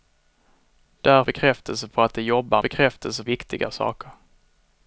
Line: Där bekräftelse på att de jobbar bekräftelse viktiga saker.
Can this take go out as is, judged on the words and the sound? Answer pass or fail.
pass